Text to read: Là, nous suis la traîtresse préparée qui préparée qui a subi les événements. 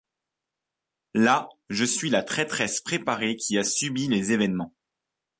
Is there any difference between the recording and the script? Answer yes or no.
yes